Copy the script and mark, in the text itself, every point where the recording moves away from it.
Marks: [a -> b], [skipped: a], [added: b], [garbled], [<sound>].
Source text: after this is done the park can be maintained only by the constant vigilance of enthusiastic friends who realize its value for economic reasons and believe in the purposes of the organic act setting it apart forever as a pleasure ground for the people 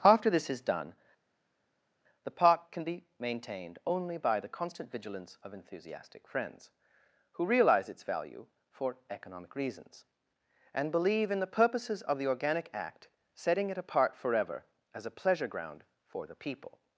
after this is done the park can be maintained only by the constant vigilance of enthusiastic friends who realize its value for economic reasons and believe in the purposes of the organic act setting it apart forever as a pleasure ground for the people